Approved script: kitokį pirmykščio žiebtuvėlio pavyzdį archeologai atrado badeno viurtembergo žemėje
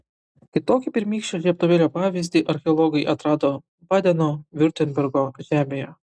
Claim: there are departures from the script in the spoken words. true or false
false